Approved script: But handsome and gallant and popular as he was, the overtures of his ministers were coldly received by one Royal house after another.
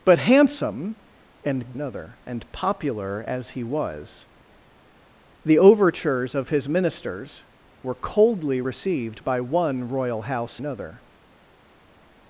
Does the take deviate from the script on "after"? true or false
true